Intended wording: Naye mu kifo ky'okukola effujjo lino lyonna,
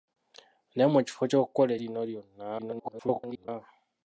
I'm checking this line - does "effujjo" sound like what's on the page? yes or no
no